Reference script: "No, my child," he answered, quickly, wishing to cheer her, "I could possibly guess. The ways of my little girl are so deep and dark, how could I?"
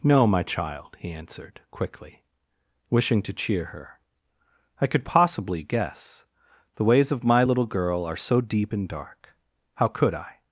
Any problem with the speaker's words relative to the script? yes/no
no